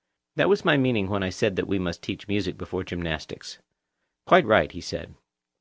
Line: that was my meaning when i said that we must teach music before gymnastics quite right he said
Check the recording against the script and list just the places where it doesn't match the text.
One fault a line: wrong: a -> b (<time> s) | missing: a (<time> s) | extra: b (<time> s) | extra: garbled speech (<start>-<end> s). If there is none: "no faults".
no faults